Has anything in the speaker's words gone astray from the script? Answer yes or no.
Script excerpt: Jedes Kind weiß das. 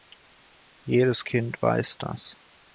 no